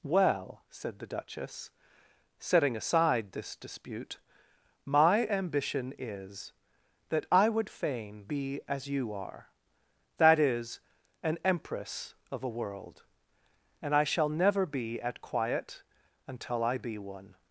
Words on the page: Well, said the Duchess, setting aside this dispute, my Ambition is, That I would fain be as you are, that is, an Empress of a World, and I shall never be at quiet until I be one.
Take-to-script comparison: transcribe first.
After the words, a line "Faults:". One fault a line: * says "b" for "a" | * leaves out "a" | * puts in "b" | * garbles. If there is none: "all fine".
Well, said the Duchess, setting aside this dispute, my Ambition is, That I would fain be as you are, that is, an Empress of a World, and I shall never be at quiet until I be one.
Faults:
all fine